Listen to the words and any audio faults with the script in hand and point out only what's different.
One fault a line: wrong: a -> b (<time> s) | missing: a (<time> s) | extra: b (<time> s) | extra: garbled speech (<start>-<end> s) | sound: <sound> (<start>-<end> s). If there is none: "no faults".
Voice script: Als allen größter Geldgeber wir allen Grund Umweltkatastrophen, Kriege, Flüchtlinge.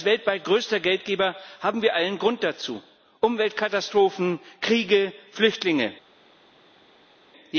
wrong: allen -> weltweit (0.1 s)
extra: haben (1.6 s)
extra: dazu (2.4 s)